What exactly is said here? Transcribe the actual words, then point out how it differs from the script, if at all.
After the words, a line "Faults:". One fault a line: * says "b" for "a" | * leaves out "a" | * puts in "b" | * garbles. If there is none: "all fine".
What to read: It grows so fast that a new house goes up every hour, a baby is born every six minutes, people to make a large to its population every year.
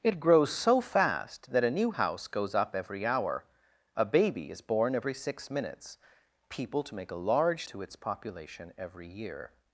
It grows so fast that a new house goes up every hour, a baby is born every six minutes, people to make a large to its population every year.
Faults:
all fine